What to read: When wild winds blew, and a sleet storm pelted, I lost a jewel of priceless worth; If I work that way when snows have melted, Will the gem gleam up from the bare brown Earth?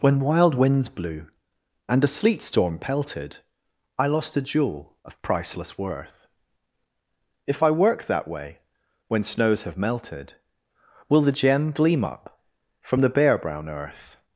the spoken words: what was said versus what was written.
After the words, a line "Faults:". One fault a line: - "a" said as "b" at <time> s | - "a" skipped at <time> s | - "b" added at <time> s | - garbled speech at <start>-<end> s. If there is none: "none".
When wild winds blew, and a sleet storm pelted, I lost a jewel of priceless worth; If I work that way when snows have melted, Will the gem gleam up from the bare brown Earth?
Faults:
none